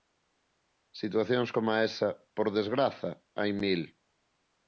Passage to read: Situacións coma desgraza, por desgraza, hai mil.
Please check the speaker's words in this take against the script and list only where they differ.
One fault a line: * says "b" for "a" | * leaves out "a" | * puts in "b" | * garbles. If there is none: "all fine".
* says "esa" for "desgraza"